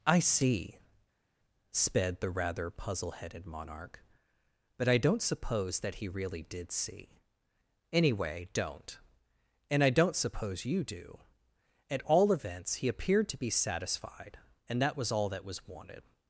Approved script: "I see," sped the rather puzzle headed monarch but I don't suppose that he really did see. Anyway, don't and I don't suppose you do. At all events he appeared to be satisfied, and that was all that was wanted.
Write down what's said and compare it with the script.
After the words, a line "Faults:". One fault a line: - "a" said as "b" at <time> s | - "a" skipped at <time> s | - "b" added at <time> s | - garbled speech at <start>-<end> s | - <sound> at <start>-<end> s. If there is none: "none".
"I see," sped the rather puzzle headed monarch but I don't suppose that he really did see. Anyway, don't and I don't suppose you do. At all events he appeared to be satisfied, and that was all that was wanted.
Faults:
none